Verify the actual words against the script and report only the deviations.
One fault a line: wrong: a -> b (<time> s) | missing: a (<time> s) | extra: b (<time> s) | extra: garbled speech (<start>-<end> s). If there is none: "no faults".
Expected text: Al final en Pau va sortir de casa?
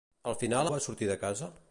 missing: en Pau (0.7 s)